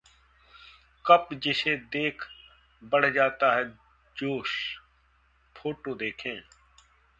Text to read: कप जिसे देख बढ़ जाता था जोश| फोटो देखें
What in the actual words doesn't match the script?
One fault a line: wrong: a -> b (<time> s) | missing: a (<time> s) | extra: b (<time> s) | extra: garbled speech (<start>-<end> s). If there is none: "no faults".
wrong: था -> है (3.5 s)